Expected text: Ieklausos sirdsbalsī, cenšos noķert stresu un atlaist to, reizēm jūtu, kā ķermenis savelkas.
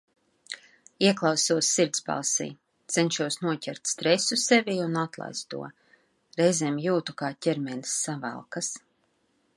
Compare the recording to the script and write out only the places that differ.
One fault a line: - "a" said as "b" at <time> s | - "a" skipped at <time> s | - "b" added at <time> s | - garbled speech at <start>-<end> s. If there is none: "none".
- "sevī" added at 4.5 s